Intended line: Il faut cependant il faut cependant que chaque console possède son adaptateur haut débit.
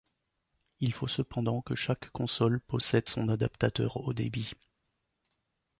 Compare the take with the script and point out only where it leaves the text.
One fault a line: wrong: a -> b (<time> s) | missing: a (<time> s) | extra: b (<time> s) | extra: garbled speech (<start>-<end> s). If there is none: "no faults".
missing: il faut cependant (1.6 s)